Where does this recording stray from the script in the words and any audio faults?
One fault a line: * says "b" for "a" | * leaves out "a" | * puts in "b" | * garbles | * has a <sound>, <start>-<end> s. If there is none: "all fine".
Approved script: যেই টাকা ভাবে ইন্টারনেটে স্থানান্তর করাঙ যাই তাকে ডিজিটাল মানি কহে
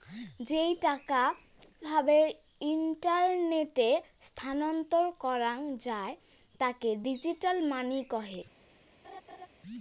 * has a laugh, 9.0-9.5 s